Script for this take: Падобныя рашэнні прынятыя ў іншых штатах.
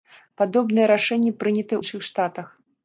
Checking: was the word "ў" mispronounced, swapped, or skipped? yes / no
yes